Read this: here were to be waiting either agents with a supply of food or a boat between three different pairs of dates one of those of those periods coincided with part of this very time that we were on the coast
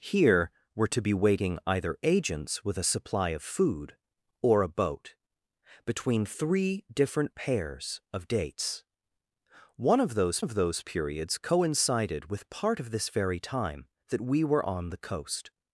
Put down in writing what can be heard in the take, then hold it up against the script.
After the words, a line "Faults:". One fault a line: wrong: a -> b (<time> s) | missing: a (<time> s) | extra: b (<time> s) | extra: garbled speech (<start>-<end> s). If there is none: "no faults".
here were to be waiting either agents with a supply of food or a boat between three different pairs of dates one of those of those periods coincided with part of this very time that we were on the coast
Faults:
no faults